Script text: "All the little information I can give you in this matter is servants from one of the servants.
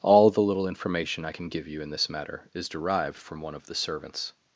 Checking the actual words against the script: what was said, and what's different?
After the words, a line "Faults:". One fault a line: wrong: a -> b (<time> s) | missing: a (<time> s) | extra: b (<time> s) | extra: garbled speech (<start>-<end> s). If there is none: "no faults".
"All the little information I can give you in this matter is derived from one of the servants.
Faults:
wrong: servants -> derived (2.7 s)